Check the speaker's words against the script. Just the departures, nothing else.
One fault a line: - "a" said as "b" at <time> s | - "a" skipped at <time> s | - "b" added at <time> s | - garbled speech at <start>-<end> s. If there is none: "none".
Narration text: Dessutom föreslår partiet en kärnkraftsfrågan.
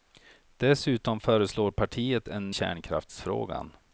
none